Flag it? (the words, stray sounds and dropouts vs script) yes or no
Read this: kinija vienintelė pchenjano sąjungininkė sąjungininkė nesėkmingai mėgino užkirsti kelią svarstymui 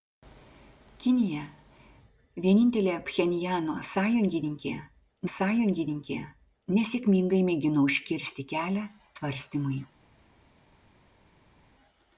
no